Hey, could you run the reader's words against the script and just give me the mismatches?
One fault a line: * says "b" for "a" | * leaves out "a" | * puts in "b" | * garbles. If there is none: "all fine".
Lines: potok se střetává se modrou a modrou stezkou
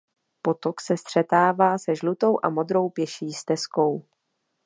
* says "žlutou" for "modrou"
* puts in "pěší"